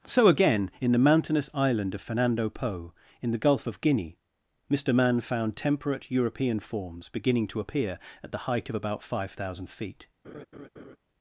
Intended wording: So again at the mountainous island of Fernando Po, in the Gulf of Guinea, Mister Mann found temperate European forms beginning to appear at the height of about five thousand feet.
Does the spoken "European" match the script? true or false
true